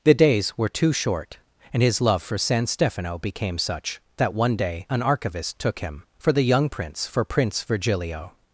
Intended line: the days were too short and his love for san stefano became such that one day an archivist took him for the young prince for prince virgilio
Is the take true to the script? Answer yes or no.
yes